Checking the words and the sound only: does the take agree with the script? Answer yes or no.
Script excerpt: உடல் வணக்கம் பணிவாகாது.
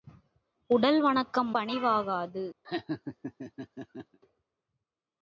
no